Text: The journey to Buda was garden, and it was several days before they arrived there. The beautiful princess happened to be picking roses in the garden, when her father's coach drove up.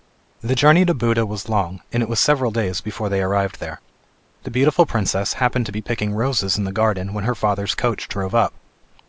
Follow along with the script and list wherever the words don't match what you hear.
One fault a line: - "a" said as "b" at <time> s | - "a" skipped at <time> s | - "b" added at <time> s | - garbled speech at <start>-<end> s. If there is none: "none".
- "garden" said as "long" at 1.5 s